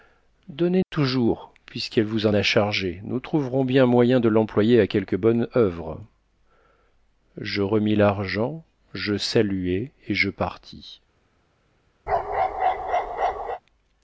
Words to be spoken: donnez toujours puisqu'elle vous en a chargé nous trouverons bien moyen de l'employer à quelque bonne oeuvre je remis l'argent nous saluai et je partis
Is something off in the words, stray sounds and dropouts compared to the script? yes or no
yes